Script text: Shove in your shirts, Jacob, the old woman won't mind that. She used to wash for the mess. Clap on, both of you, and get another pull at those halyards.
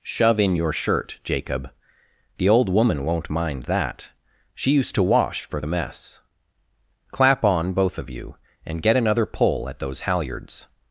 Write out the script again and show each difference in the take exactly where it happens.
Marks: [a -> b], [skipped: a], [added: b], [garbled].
Shove in your [shirts, -> shirt] Jacob, the old woman won't mind that. She used to wash for the mess. Clap on, both of you, and get another pull at those halyards.